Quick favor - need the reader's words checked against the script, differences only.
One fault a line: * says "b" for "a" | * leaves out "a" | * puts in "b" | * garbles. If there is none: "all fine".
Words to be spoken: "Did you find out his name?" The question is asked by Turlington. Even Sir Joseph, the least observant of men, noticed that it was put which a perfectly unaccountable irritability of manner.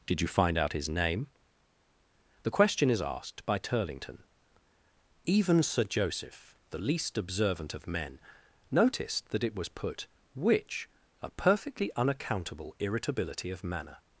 all fine